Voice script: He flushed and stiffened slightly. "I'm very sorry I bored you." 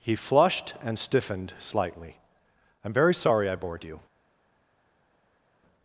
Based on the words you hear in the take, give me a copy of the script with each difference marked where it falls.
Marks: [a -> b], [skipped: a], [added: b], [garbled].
He flushed and stiffened slightly. "I'm very sorry I bored you."